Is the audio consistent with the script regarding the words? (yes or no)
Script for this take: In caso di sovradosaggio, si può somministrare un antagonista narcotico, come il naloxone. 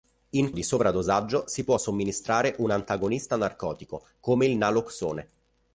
no